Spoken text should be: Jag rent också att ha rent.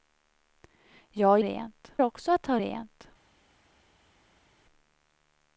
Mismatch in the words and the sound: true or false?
false